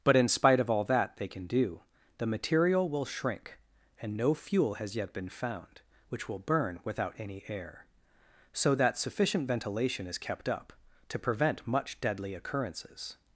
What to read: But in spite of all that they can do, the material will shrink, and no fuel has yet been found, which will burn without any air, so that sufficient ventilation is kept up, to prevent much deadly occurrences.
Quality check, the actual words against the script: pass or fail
pass